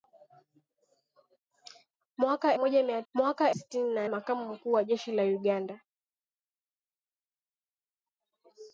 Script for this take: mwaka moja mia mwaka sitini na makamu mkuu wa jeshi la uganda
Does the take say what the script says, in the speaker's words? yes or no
yes